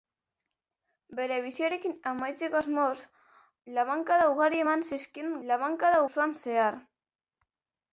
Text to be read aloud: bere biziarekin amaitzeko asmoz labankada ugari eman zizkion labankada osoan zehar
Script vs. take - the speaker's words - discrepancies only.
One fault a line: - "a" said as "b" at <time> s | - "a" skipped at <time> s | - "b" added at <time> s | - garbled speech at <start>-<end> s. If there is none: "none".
none